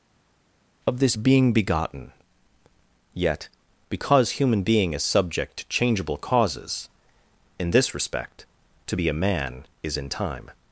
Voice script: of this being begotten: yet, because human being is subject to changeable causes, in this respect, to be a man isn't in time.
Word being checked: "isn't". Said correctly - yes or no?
no